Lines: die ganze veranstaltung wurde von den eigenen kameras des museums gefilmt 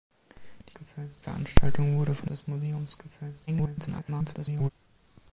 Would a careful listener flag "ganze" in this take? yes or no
yes